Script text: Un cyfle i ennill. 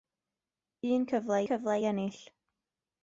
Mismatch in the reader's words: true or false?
true